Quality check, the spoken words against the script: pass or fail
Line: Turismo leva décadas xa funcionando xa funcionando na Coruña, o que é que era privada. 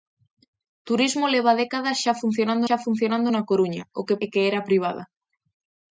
pass